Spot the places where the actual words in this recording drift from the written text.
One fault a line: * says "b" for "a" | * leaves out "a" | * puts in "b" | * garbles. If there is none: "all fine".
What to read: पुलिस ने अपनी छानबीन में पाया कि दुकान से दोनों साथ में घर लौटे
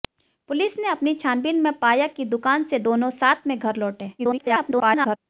* garbles